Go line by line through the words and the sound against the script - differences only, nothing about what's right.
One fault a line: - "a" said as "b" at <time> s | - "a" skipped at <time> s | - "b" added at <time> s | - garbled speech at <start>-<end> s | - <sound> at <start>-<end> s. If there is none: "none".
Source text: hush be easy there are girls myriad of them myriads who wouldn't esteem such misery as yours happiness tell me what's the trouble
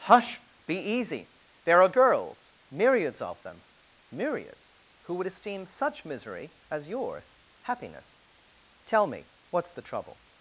- "myriad" said as "myriads" at 2.7 s
- "wouldn't" said as "would" at 5.1 s